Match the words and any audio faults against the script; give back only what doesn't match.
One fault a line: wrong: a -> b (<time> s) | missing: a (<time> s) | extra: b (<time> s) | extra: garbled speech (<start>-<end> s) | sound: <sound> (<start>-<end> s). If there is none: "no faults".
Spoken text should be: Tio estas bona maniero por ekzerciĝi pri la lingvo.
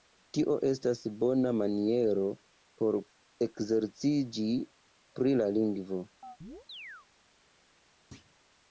sound: chirp (6.2-7.1 s)
sound: thud (8.1-8.4 s)